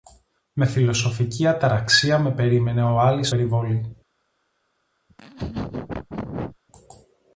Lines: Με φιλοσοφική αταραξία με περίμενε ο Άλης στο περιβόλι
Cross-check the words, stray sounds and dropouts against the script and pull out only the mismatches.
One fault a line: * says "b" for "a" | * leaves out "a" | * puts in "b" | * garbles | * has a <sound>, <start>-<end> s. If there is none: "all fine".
* leaves out "στο"
* has a laugh, 5.1-6.6 s